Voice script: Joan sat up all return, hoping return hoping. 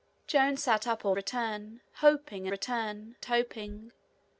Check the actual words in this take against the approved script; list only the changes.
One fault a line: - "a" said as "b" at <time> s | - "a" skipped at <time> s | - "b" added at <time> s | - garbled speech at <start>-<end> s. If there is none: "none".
none